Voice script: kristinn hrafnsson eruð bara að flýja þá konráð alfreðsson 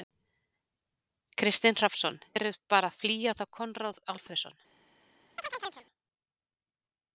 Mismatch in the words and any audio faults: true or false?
true